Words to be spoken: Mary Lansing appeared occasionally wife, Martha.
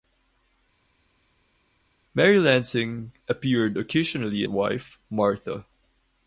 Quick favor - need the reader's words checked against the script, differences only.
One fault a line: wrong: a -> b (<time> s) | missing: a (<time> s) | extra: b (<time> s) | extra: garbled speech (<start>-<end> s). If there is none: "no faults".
no faults